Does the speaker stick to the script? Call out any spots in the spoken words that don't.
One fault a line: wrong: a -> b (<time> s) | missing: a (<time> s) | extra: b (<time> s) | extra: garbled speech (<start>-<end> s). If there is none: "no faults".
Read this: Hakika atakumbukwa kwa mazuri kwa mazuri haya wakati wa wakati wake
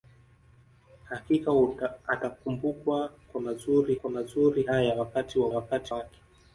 no faults